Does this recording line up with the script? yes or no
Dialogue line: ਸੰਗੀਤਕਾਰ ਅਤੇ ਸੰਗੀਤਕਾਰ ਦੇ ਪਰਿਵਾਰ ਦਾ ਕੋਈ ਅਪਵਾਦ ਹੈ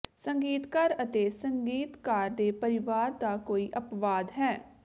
yes